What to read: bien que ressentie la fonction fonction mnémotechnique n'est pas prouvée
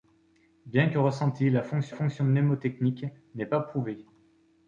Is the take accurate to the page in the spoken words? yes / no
yes